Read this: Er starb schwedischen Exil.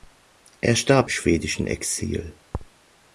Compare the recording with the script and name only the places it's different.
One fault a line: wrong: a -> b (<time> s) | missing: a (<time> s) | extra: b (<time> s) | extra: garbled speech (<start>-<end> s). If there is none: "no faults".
no faults